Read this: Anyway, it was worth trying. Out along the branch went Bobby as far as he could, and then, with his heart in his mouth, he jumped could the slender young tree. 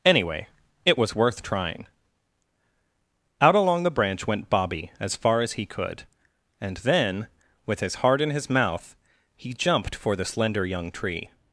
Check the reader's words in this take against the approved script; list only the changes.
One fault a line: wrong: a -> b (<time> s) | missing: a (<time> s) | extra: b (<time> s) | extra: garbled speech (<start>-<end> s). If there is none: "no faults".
wrong: could -> for (9.9 s)